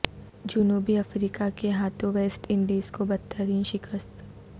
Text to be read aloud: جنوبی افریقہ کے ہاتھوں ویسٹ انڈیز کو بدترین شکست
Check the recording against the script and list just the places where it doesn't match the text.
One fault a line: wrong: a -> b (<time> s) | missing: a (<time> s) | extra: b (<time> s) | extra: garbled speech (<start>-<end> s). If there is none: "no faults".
no faults